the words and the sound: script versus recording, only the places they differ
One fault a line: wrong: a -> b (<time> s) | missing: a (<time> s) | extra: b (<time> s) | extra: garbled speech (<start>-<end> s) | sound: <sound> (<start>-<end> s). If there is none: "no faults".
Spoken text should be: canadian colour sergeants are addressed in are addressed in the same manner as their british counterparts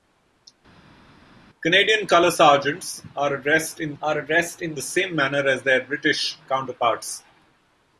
no faults